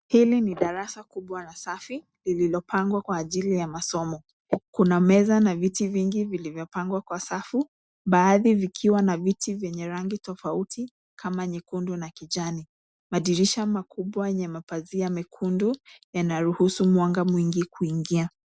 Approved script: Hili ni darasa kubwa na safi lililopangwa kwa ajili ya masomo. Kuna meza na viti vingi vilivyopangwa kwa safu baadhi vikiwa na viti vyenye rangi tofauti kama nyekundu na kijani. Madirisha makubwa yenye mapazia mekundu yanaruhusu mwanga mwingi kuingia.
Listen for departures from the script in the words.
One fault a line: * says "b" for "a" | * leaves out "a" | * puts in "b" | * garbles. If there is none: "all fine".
all fine